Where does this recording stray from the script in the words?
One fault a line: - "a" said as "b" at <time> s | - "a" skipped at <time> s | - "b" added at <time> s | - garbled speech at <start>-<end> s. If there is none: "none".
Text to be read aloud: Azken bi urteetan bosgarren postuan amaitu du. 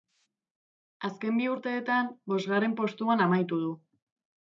none